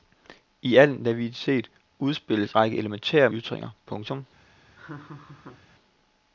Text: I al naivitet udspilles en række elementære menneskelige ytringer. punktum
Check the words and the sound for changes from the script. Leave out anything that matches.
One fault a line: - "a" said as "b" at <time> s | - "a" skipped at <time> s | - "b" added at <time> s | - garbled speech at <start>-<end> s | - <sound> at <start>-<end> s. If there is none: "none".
- "en" skipped at 2.5 s
- "menneskelige" skipped at 3.3 s
- laugh at 4.8-5.6 s